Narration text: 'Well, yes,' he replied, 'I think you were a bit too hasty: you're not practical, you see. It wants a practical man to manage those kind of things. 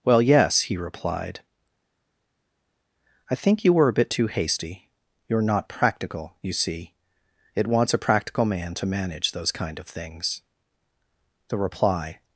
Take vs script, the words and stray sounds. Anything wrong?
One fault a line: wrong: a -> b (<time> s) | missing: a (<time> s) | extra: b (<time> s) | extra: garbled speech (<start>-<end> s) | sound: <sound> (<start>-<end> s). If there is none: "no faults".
extra: The reply (11.5 s)